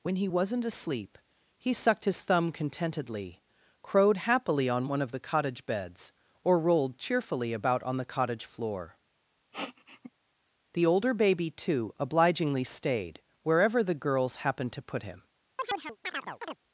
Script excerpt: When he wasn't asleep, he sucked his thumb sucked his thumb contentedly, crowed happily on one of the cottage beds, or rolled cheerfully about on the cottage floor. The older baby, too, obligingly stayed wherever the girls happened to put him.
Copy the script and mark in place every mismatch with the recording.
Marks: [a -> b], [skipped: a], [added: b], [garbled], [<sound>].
When he wasn't asleep, he sucked his thumb [skipped: sucked his thumb] contentedly, crowed happily on one of the cottage beds, or rolled cheerfully about on the cottage floor. [sniff] The older baby, too, obligingly stayed wherever the girls happened to put him. [chirp]